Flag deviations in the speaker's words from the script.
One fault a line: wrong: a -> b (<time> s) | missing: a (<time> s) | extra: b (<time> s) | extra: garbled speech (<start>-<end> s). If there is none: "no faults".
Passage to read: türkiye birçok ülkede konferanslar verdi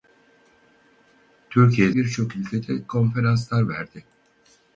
no faults